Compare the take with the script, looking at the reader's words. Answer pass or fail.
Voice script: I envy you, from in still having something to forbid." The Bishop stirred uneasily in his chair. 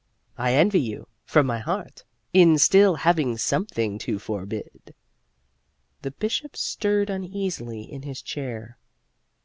fail